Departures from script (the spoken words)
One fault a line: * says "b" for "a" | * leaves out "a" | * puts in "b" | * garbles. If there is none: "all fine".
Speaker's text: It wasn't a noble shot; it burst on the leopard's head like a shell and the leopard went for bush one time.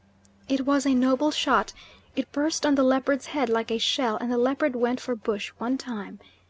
* says "was" for "wasn't"